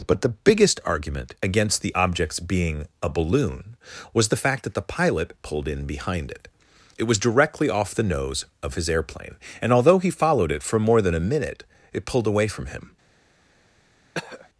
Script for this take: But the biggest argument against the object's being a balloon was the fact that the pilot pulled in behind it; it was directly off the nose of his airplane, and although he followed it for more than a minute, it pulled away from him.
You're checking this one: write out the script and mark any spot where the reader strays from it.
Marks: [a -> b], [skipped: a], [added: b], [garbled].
But the biggest argument against the object's being a balloon was the fact that the pilot pulled in behind it; it was directly off the nose of his airplane, and although he followed it for more than a minute, it pulled away from him.